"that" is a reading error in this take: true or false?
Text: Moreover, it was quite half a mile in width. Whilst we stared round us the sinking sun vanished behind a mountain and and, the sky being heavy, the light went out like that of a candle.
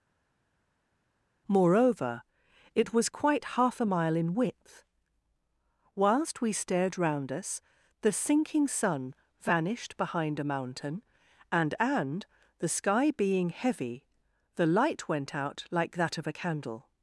false